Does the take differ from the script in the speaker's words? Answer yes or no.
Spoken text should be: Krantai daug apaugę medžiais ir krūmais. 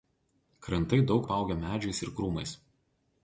no